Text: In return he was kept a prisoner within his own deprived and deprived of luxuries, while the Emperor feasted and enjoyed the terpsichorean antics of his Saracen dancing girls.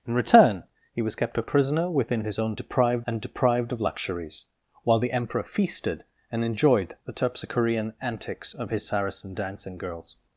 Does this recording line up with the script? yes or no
yes